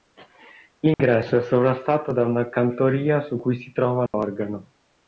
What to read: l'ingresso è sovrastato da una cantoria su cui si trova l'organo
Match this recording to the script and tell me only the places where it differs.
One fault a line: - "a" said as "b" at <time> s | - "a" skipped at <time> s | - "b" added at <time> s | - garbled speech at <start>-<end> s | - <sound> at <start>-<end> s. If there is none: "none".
- dropout at 0.9-1.0 s
- dropout at 4.1-4.1 s